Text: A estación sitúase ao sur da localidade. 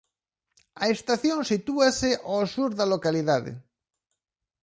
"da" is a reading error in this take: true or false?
false